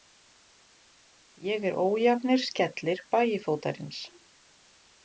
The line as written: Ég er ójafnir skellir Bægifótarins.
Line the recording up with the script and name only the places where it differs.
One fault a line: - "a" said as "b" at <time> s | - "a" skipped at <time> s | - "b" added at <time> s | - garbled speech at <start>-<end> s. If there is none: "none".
none